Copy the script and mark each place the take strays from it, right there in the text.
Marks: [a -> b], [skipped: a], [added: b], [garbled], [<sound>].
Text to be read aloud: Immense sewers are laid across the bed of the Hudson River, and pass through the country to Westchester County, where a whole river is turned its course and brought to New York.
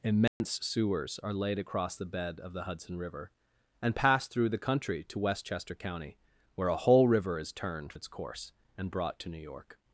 Immense [dropout] sewers are laid across the bed of the Hudson River, and pass through the country to Westchester County, where a whole river is turned its course and brought to New York.